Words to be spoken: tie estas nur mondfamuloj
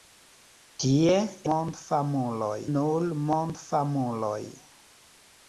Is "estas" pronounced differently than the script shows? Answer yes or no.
yes